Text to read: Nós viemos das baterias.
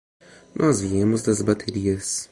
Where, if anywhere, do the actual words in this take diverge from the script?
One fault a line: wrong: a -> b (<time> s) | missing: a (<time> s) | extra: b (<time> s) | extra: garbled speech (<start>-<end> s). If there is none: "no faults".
no faults